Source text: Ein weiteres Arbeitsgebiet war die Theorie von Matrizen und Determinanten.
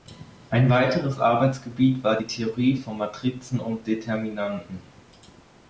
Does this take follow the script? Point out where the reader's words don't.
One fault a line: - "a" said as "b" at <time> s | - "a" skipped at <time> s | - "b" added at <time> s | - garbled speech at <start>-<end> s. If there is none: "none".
none